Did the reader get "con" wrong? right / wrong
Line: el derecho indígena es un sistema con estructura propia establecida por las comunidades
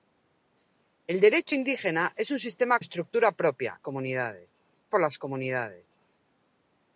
wrong